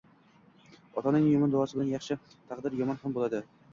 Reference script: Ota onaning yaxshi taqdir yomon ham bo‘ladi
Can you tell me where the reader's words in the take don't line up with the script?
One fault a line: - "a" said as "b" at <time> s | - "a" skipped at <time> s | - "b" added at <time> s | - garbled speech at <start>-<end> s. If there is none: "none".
- "yomon duosi bilan" added at 1.3 s